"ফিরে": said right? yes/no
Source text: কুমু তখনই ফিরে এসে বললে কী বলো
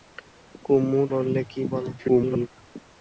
no